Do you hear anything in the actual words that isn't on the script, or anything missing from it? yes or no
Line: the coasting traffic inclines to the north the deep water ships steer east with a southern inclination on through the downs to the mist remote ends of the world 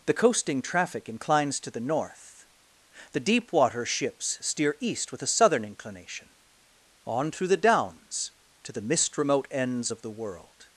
no